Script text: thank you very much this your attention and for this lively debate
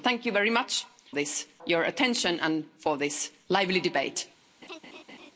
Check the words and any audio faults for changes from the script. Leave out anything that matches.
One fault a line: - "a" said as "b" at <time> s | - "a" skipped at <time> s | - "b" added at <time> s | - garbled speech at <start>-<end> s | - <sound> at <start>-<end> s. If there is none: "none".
- laugh at 4.6-5.3 s